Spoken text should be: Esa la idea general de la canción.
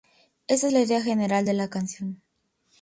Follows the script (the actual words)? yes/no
yes